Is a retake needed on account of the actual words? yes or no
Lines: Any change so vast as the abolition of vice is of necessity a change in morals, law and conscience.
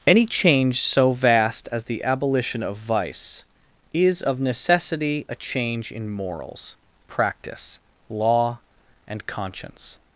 yes